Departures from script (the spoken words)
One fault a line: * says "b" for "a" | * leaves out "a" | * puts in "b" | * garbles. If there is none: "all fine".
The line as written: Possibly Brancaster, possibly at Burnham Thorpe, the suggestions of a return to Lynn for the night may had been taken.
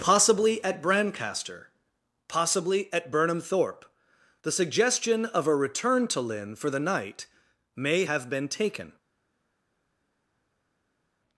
* puts in "at"
* says "suggestion" for "suggestions"
* says "have" for "had"